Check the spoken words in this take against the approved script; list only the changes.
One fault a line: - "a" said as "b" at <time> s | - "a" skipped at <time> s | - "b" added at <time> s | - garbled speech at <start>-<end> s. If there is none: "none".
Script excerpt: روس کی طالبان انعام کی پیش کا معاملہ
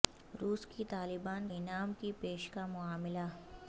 none